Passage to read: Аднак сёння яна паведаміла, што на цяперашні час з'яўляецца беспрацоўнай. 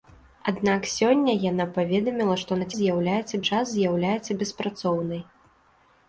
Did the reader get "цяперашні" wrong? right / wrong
wrong